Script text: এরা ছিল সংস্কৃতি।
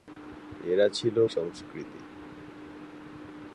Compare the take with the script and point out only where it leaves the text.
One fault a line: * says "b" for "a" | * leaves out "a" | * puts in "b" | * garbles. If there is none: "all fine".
all fine